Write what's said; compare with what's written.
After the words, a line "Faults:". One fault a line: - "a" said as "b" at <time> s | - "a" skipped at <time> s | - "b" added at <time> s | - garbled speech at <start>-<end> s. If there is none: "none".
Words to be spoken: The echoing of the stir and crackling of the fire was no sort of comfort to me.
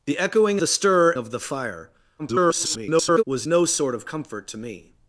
The echoing the stir of the fire [garbled] was no sort of comfort to me.
Faults:
- "of" skipped at 0.6 s
- "and crackling" skipped at 1.1 s
- garbled speech at 2.2-3.2 s